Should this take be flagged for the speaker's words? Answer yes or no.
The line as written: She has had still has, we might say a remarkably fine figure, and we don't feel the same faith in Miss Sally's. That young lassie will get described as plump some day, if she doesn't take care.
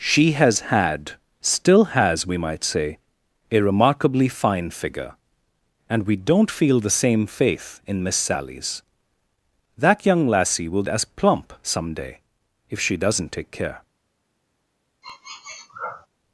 yes